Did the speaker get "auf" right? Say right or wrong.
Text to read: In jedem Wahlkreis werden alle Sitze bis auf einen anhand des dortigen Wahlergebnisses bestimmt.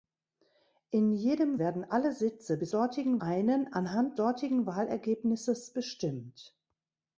wrong